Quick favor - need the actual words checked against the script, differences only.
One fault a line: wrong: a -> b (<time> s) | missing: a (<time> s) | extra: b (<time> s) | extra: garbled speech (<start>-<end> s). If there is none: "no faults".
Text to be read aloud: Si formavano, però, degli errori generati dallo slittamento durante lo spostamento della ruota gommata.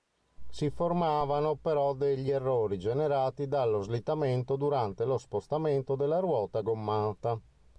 no faults